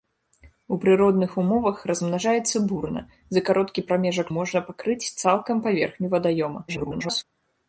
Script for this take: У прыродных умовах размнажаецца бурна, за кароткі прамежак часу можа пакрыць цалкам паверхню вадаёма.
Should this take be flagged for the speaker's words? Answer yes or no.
yes